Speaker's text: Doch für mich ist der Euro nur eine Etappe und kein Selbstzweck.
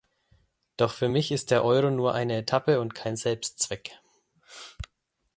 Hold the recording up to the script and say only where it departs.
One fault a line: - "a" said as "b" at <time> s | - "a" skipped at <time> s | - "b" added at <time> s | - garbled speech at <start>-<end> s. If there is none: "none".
none